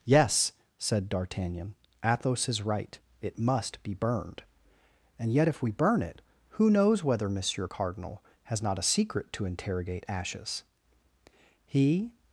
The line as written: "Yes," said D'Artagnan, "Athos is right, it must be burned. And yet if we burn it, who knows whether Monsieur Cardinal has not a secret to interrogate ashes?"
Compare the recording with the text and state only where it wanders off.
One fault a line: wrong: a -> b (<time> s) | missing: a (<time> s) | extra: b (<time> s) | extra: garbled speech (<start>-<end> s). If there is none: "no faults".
extra: He (11.6 s)